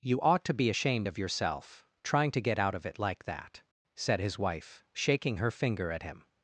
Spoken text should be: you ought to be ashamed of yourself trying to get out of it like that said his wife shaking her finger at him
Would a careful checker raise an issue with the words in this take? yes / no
no